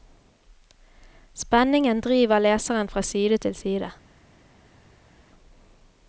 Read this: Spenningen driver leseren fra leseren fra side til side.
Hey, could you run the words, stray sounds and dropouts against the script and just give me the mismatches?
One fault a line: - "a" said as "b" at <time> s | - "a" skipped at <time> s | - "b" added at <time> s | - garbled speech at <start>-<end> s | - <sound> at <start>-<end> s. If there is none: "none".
- "leseren fra" skipped at 3.0 s